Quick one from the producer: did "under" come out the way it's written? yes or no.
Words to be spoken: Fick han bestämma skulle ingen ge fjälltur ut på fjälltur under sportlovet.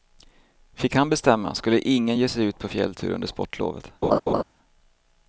yes